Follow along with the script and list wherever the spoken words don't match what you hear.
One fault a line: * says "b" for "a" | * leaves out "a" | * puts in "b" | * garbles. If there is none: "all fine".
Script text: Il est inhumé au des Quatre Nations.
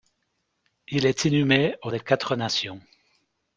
all fine